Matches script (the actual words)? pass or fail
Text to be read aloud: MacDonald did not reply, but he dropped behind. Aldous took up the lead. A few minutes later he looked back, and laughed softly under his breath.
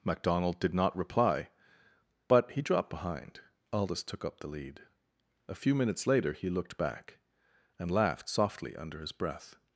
pass